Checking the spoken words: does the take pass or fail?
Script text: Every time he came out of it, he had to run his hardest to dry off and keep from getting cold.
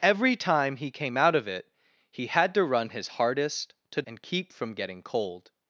fail